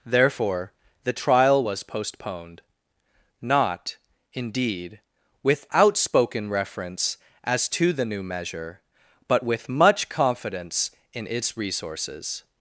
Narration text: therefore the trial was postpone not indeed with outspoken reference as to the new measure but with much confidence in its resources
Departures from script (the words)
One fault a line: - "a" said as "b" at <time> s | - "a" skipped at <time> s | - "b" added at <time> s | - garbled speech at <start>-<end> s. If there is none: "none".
- "postpone" said as "postponed" at 1.8 s